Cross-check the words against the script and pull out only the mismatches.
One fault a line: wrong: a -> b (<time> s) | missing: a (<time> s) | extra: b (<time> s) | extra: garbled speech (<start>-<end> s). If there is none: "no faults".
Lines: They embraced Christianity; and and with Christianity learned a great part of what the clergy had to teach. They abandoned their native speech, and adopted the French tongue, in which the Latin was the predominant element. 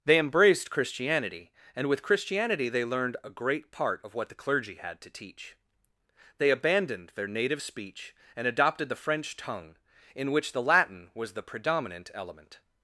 missing: and (1.9 s)
extra: they (2.7 s)